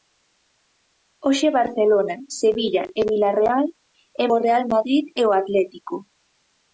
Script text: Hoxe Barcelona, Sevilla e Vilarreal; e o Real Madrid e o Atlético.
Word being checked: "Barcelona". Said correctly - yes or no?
yes